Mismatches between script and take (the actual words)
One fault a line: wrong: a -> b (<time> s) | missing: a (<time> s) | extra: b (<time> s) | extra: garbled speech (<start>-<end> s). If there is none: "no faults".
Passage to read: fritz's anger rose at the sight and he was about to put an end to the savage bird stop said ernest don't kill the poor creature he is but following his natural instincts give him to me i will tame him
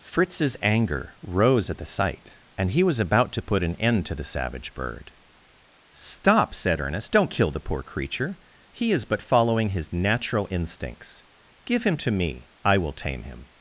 no faults